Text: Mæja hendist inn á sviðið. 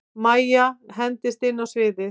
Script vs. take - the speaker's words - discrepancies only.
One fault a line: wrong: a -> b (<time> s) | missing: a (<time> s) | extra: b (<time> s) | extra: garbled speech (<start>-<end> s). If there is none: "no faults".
no faults